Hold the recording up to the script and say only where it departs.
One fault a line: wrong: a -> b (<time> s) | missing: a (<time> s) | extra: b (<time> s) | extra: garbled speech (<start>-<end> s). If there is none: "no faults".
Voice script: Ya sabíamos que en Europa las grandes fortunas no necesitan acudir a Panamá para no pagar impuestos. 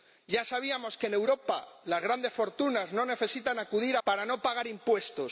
missing: a Panamá (4.0 s)